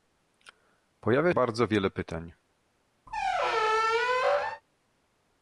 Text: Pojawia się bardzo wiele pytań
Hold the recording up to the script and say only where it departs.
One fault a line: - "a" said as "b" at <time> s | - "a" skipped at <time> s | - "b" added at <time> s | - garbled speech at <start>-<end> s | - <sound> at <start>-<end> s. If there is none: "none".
- "się" skipped at 1.3 s
- squeak at 3.1-4.6 s